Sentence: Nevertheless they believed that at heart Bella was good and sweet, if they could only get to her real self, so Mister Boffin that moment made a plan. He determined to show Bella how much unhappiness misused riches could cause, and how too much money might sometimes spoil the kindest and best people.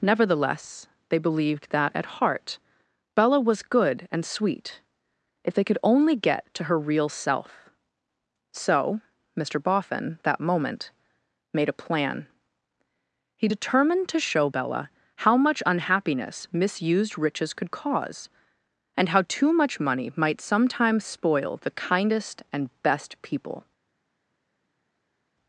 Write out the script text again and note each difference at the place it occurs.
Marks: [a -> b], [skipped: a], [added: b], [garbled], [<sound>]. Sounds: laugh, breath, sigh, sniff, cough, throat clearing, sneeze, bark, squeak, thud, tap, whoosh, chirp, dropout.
Nevertheless they believed that at heart Bella was good and sweet, if they could only get to her real self, so Mister Boffin that moment made a plan. He determined to show Bella how much unhappiness misused riches could cause, and how too much money might sometimes spoil the kindest and best people.